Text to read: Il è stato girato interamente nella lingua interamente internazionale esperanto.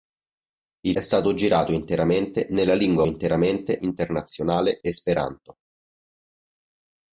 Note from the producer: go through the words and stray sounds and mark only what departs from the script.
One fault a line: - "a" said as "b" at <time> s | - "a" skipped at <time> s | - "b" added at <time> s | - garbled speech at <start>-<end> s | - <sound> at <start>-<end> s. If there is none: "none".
none